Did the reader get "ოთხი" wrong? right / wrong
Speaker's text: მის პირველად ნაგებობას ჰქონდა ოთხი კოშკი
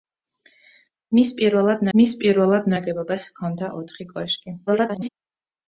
right